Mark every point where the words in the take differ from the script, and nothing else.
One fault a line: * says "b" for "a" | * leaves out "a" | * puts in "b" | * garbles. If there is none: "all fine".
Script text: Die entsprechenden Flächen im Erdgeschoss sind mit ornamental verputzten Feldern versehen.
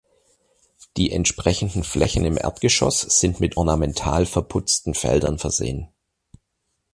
all fine